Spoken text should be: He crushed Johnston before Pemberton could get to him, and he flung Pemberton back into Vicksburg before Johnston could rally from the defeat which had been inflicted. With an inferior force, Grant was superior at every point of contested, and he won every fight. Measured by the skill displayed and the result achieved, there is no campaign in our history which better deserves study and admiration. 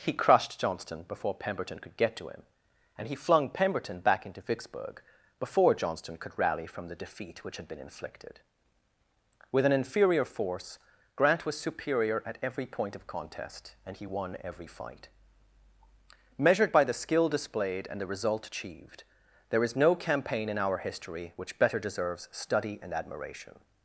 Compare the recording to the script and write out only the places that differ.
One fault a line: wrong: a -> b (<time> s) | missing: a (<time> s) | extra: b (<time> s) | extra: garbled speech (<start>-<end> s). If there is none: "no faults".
wrong: contested -> contest (13.1 s)